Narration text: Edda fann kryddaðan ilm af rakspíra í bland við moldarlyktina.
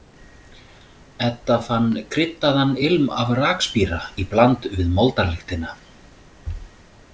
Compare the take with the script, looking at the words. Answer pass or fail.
pass